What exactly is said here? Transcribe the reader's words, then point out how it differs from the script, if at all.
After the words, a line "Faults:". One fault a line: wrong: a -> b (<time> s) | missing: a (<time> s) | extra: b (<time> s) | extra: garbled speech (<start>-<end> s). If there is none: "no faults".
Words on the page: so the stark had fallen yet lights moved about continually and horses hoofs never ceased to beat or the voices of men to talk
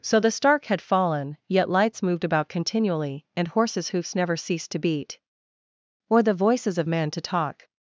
so the stark had fallen yet lights moved about continually and horses hoofs never ceased to beat or the voices of men to talk
Faults:
no faults